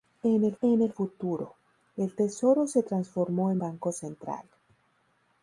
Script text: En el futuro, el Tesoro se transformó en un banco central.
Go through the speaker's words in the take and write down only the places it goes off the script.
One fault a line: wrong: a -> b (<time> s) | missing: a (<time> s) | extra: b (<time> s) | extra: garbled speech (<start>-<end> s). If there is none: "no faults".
extra: en el (0.6 s)
missing: un (3.6 s)